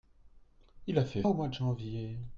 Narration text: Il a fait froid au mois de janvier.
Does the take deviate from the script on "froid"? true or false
true